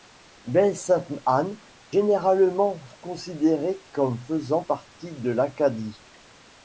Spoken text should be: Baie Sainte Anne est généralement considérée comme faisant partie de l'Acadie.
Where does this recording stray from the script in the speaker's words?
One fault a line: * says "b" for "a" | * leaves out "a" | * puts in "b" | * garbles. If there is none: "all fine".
* leaves out "est"